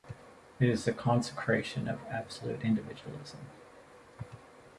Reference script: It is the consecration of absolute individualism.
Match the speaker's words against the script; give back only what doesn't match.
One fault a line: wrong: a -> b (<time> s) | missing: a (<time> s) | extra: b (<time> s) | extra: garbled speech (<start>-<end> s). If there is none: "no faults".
no faults